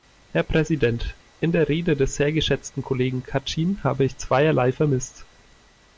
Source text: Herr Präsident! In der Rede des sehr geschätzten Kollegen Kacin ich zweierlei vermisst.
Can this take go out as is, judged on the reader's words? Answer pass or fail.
fail